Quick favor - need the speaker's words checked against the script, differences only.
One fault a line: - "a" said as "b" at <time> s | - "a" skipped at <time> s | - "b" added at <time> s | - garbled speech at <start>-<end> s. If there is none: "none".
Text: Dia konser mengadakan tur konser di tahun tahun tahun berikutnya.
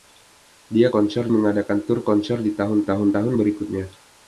none